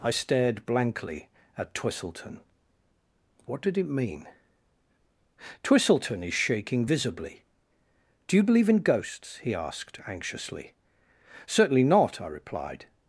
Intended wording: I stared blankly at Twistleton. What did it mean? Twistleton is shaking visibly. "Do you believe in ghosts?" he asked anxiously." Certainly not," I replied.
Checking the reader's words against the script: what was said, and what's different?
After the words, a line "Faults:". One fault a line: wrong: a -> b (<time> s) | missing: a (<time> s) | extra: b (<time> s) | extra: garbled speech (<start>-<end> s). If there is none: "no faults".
I stared blankly at Twistleton. What did it mean? Twistleton is shaking visibly. "Do you believe in ghosts?" he asked anxiously." Certainly not," I replied.
Faults:
no faults